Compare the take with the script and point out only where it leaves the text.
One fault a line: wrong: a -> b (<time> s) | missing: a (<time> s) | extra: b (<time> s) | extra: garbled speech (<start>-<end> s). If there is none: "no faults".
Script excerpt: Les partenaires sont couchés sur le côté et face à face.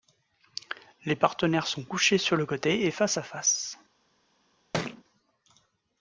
no faults